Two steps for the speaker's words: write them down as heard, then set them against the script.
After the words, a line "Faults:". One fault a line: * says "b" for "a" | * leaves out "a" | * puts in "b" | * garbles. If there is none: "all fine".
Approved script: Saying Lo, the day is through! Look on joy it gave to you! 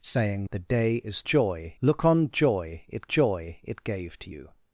Saying The day is joy! Look on joy it joy it gave to you!
Faults:
* leaves out "Lo"
* says "joy" for "through"
* puts in "joy it"